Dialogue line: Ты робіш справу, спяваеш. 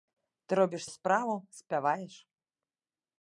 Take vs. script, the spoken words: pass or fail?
pass